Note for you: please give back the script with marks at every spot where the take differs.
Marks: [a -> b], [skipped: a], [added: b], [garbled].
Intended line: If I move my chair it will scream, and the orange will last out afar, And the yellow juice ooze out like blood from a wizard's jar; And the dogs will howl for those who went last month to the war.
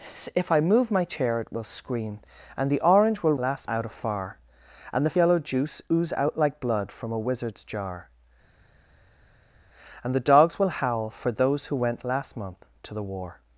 If I move my chair it will scream, and the orange will last out afar, And the yellow juice ooze out like blood from a wizard's jar; And the dogs will howl for those who went last month to the war.